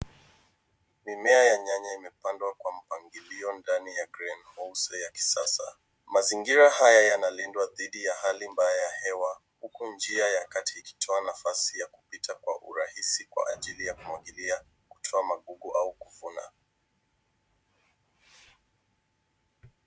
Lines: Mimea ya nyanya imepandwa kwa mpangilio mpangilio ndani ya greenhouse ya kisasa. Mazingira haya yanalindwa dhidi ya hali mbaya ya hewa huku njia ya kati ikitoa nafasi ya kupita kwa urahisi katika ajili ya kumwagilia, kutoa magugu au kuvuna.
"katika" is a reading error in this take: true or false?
true